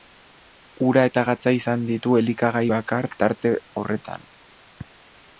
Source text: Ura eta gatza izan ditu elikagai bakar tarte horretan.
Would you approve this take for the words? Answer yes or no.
yes